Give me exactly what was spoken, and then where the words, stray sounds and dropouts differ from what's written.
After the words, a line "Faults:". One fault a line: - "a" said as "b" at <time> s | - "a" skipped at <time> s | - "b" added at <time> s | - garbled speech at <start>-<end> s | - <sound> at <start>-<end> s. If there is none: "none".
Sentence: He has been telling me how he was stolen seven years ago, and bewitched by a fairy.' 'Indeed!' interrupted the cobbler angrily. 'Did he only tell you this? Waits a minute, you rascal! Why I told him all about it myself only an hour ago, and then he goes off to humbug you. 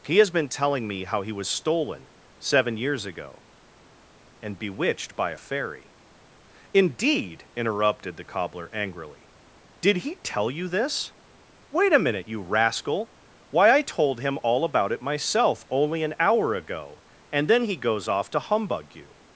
He has been telling me how he was stolen seven years ago, and bewitched by a fairy.' 'Indeed!' interrupted the cobbler angrily. 'Did he tell you this? Wait a minute, you rascal! Why I told him all about it myself only an hour ago, and then he goes off to humbug you.
Faults:
- "only" skipped at 10.1 s
- "Waits" said as "Wait" at 11.7 s